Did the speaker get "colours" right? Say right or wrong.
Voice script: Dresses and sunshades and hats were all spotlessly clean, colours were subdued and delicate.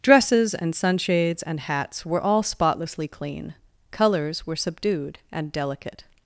right